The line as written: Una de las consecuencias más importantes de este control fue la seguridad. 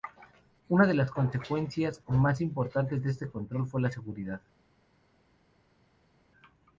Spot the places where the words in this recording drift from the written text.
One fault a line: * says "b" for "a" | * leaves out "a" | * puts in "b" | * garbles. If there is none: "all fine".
all fine